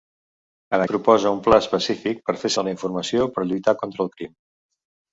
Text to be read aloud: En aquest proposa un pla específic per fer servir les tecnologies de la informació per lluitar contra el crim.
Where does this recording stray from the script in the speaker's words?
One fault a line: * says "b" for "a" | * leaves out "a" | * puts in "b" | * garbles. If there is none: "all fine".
* leaves out "aquest"
* leaves out "servir les tecnologies"